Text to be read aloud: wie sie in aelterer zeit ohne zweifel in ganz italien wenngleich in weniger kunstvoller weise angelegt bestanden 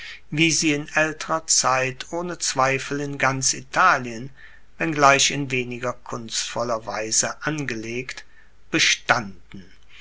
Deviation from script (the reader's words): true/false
false